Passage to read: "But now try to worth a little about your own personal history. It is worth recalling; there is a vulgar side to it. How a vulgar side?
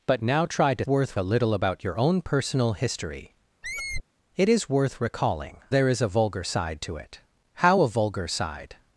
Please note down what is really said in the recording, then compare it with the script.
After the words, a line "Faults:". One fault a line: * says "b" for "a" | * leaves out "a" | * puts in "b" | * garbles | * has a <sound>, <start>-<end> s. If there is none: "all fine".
"But now try to worth a little about your own personal history. It is worth recalling; there is a vulgar side to it. How a vulgar side?
Faults:
* has a squeak, 3.6-4.0 s